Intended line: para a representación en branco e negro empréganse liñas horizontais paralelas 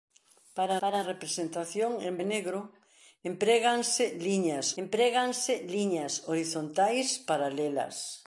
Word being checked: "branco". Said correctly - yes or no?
no